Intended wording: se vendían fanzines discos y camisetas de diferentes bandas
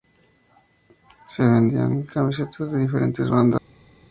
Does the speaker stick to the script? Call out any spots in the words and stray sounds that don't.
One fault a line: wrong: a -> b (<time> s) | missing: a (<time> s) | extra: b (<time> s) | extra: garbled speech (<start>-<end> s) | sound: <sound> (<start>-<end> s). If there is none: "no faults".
missing: fanzines discos y (2.1 s)